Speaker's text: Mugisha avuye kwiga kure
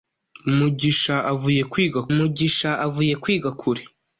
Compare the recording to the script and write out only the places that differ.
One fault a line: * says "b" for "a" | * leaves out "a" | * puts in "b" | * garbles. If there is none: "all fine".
* puts in "mugisha avuye kwiga"